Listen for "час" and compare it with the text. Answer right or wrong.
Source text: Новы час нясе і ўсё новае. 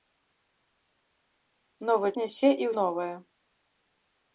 wrong